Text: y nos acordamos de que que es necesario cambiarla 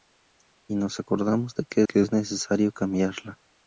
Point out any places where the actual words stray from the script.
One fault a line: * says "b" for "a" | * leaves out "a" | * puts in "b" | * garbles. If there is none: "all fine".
all fine